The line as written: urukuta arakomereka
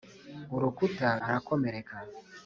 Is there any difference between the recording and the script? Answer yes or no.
no